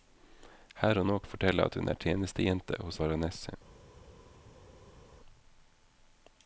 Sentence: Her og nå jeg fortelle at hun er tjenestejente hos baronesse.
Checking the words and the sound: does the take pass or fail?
pass